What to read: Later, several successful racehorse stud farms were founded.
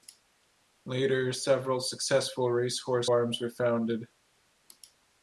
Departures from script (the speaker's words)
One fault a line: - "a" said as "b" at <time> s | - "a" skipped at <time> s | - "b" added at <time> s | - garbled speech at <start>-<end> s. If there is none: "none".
- "stud" skipped at 3.1 s